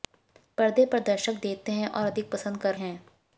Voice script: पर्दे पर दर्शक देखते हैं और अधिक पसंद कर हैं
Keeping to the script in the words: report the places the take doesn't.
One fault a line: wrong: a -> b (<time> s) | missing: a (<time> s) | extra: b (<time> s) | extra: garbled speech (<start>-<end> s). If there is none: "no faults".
no faults